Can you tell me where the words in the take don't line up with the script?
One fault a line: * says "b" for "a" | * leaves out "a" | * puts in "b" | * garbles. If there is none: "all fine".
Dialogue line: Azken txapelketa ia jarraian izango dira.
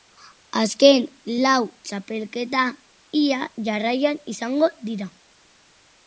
* puts in "lau"